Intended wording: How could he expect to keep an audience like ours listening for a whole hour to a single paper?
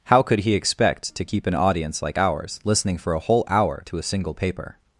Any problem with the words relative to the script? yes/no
no